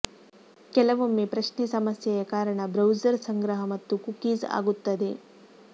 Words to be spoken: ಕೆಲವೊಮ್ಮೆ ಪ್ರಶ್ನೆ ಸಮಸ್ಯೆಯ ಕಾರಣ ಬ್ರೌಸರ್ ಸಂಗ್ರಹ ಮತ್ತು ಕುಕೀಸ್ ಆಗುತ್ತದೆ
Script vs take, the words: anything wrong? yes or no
no